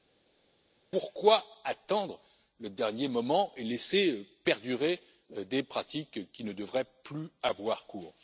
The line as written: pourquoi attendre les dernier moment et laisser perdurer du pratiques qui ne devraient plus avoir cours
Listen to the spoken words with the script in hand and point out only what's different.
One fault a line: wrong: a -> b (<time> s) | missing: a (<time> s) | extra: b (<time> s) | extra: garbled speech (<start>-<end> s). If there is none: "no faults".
wrong: les -> le (2.6 s)
wrong: du -> des (5.3 s)